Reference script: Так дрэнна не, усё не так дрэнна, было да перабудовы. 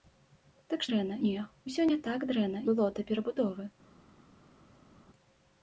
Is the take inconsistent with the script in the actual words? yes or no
no